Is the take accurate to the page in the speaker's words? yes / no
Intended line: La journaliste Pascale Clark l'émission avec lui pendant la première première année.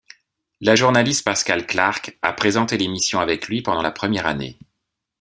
no